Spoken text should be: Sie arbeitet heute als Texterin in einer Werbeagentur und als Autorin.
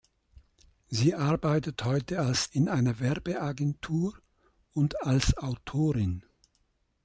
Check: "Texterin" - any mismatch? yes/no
yes